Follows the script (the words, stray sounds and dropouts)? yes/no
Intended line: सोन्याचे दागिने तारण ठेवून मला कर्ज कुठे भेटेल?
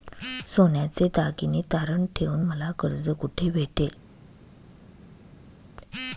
yes